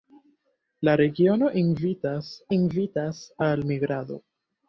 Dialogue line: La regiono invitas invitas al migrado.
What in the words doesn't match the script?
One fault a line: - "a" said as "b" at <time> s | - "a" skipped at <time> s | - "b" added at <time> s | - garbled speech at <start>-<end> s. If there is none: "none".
none